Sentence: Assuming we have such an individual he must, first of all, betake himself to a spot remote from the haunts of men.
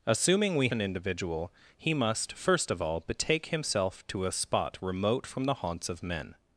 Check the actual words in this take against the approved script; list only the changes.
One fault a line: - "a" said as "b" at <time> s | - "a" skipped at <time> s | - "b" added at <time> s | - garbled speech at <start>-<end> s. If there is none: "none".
- "have such" skipped at 0.7 s